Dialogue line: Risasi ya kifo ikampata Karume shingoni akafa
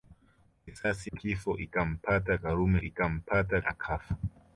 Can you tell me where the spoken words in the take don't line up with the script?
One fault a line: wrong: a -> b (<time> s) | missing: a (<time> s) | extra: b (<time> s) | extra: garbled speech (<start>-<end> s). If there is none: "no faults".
missing: ya (1.1 s)
wrong: shingoni -> ikampata (2.8 s)